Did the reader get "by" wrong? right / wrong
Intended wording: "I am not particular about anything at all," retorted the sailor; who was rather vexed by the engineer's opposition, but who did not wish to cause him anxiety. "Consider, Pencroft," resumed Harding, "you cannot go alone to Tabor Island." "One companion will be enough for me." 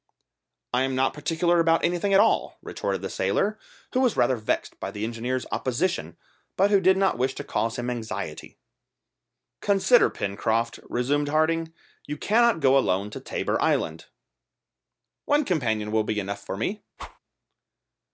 right